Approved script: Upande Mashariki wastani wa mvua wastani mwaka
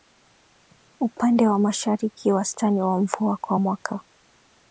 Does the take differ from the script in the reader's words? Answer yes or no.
yes